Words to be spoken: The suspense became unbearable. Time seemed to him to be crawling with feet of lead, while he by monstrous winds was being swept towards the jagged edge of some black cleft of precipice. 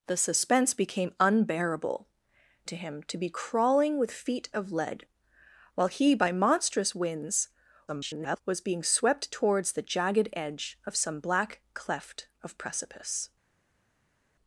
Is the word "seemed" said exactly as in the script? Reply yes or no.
no